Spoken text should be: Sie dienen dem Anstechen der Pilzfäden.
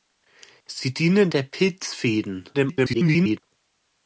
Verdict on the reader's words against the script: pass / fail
fail